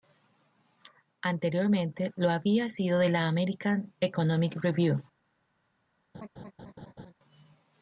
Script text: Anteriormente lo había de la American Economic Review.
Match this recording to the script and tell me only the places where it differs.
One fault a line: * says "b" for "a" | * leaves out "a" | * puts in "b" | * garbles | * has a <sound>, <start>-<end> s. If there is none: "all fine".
* puts in "sido"
* has a laugh, 6.1-7.1 s